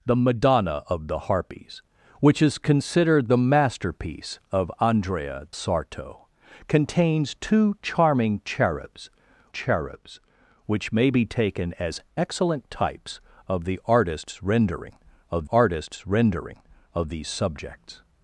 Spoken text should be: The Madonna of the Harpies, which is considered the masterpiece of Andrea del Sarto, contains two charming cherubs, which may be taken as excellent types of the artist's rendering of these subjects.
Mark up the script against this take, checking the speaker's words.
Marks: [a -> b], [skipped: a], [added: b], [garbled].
The Madonna of the Harpies, which is considered the masterpiece of Andrea [skipped: del] Sarto, contains two charming cherubs, [added: cherubs] which may be taken as excellent types of the artist's rendering of [added: artist's rendering of] these subjects.